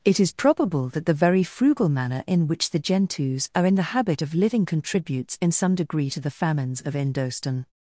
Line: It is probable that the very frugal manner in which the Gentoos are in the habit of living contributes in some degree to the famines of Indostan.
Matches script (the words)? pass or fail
pass